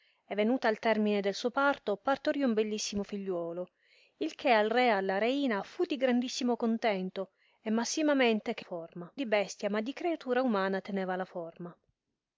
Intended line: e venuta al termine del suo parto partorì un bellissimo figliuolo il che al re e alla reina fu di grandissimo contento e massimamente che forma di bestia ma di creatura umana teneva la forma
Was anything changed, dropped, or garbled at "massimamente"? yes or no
no